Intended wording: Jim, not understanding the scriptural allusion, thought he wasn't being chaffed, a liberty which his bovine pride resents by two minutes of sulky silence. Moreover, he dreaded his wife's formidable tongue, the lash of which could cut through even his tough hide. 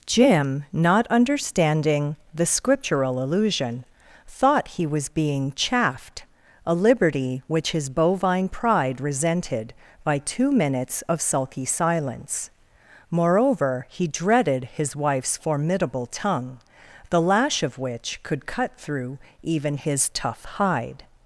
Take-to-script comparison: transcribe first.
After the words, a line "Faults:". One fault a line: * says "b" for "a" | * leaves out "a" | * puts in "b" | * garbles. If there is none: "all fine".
Jim, not understanding the scriptural allusion, thought he was being chaffed, a liberty which his bovine pride resented by two minutes of sulky silence. Moreover, he dreaded his wife's formidable tongue, the lash of which could cut through even his tough hide.
Faults:
* says "was" for "wasn't"
* says "resented" for "resents"